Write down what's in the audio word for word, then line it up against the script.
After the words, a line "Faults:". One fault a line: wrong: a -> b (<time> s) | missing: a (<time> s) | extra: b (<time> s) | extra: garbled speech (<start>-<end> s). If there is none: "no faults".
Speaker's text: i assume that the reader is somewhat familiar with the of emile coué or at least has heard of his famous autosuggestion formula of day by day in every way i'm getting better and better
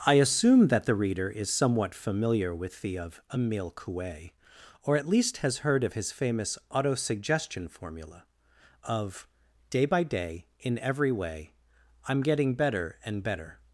i assume that the reader is somewhat familiar with the of emile coué or at least has heard of his famous autosuggestion formula of day by day in every way i'm getting better and better
Faults:
no faults